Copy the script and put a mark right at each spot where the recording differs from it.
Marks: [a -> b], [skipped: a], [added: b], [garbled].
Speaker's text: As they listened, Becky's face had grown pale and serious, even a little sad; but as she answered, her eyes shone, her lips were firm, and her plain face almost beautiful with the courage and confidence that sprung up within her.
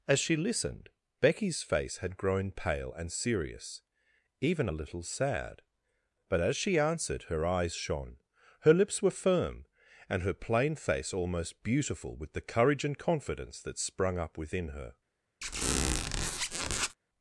As [they -> she] listened, Becky's face had grown pale and serious, even a little sad; but as she answered, her eyes shone, her lips were firm, and her plain face almost beautiful with the courage and confidence that sprung up within her.